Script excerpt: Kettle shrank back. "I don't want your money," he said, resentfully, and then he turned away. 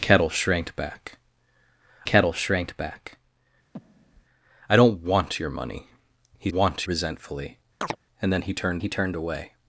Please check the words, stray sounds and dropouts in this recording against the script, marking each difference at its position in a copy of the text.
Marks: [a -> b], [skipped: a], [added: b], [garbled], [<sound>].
Kettle shrank back. [added: kettle shrank back] [breath] "I don't want your money," he [said, -> want] resentfully, [chirp] and then he turned [added: he turned] away.